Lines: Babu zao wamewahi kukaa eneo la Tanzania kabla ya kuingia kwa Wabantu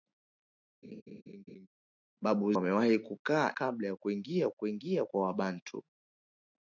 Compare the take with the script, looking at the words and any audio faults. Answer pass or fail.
fail